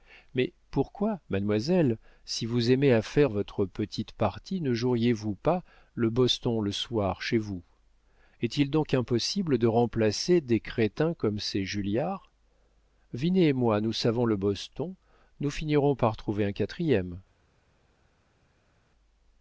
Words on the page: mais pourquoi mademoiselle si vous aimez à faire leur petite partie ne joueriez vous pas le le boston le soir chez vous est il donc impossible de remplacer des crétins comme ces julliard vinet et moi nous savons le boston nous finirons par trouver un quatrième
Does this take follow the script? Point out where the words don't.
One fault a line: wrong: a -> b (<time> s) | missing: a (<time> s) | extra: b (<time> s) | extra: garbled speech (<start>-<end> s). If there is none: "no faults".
wrong: leur -> votre (3.3 s)
missing: le (6.1 s)